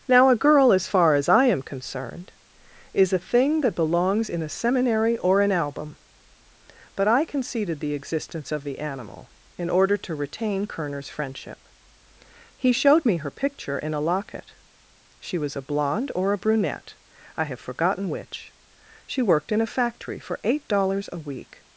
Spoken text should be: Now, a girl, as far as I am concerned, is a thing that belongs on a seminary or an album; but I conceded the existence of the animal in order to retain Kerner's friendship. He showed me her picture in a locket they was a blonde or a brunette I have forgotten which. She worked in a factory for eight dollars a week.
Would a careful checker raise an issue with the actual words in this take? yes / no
yes